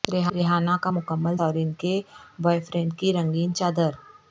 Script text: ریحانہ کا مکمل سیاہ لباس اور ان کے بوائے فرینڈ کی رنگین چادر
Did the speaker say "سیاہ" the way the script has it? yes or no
no